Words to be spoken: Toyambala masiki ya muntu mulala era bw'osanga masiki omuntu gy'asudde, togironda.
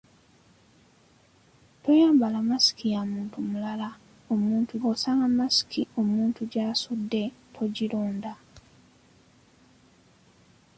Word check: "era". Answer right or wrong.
wrong